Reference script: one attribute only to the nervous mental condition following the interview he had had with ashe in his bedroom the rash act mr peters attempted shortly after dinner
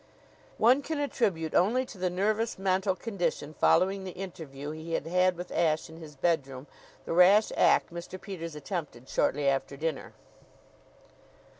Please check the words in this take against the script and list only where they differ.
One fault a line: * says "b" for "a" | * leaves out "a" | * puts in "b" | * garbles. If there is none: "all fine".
* puts in "can"